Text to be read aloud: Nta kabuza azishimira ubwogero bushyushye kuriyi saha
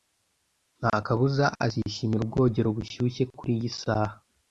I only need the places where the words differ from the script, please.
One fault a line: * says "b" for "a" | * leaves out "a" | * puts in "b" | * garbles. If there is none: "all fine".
all fine